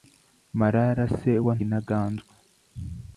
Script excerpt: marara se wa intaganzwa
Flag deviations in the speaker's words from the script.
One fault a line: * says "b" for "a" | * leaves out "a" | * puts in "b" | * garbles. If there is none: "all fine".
all fine